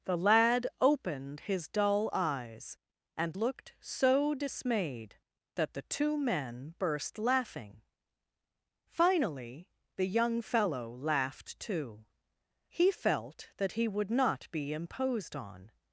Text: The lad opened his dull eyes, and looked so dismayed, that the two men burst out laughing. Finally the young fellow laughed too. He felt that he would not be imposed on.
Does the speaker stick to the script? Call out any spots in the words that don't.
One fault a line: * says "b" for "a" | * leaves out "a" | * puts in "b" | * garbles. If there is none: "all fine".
* leaves out "out"